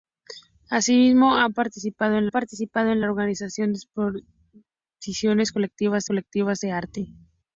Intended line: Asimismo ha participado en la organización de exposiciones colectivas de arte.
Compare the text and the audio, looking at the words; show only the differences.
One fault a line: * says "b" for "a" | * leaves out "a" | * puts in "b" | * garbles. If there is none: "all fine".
* puts in "participado en"
* puts in "colectivas"